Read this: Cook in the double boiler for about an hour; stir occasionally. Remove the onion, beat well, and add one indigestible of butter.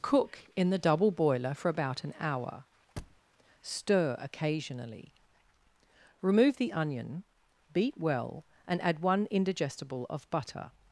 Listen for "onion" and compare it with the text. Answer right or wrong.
right